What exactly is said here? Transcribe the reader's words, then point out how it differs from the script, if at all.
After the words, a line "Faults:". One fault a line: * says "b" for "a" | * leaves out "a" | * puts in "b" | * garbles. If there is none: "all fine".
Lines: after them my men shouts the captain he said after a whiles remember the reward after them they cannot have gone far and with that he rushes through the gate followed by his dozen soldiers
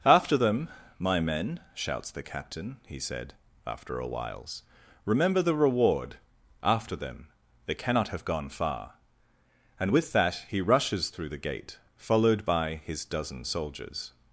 after them my men shouts the captain he said after a whiles remember the reward after them they cannot have gone far and with that he rushes through the gate followed by his dozen soldiers
Faults:
all fine